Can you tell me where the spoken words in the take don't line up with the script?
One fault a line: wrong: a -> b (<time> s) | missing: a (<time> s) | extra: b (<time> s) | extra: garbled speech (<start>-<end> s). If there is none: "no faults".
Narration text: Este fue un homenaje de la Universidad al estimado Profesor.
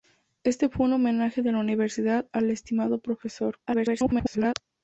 extra: garbled speech (3.7-4.5 s)